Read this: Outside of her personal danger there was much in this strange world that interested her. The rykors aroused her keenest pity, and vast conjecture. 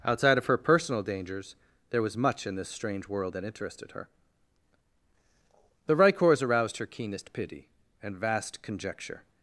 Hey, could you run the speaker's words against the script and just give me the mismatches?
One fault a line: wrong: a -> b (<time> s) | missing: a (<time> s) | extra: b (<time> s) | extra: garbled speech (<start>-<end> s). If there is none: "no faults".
wrong: danger -> dangers (1.0 s)